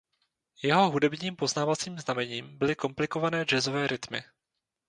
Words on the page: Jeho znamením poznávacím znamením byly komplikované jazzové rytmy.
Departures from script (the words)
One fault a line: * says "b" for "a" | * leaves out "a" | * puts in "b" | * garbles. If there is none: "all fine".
* says "hudebním" for "znamením"